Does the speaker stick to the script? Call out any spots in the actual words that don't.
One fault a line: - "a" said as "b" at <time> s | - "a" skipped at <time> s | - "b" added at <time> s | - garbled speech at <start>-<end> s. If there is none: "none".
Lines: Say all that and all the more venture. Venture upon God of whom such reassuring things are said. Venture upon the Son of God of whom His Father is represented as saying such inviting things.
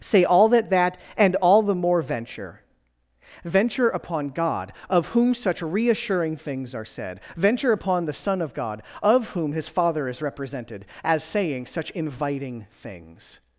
- "that" added at 0.7 s